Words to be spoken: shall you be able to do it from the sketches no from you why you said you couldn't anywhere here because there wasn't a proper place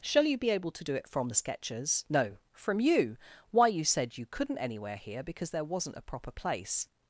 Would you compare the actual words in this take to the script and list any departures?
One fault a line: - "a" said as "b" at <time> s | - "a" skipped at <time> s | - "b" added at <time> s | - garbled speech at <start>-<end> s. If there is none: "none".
none